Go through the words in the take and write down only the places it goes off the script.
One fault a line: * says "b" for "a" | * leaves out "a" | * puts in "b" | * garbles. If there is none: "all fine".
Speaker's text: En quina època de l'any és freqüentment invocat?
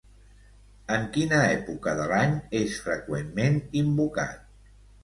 all fine